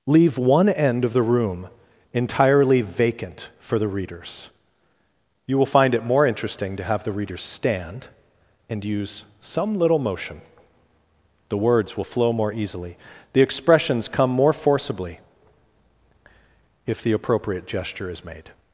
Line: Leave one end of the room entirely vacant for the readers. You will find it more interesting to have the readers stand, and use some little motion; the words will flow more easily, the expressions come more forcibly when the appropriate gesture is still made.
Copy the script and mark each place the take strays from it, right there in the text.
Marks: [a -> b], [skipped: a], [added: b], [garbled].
Leave one end of the room entirely vacant for the readers. You will find it more interesting to have the readers stand, and use some little motion; the words will flow more easily, the expressions come more forcibly [when -> if] the appropriate gesture is [skipped: still] made.